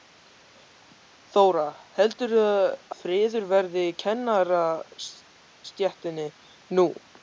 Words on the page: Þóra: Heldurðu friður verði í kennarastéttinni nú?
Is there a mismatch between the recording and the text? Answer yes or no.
no